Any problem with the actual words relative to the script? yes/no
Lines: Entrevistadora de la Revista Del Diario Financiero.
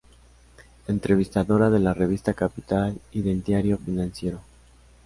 yes